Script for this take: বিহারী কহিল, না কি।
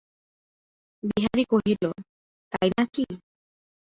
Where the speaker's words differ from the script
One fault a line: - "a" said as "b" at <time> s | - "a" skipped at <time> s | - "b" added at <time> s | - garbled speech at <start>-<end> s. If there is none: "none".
- "তাই" added at 2.5 s